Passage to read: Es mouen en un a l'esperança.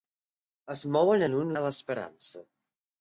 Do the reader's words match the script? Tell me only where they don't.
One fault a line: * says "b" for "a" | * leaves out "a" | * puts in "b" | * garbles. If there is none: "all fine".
all fine